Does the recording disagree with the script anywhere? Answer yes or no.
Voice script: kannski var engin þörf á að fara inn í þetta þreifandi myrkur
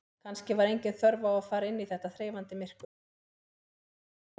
no